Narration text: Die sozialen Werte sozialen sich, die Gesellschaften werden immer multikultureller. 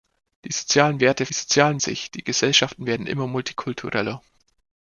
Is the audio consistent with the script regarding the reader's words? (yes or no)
yes